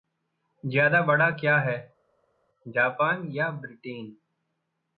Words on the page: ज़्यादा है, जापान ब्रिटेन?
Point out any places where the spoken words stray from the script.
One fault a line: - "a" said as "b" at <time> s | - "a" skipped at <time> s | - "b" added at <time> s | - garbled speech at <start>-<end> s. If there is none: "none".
- "बड़ा क्या" added at 1.0 s
- "या" added at 3.3 s